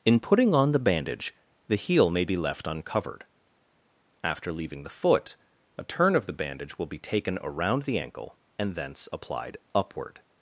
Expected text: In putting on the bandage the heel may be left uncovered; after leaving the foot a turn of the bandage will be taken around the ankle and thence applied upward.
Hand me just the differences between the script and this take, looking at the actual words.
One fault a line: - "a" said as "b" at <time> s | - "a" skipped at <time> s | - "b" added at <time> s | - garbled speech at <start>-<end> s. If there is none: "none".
none